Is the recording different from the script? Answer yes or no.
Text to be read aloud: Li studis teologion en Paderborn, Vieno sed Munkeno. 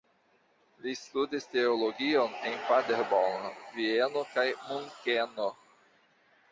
yes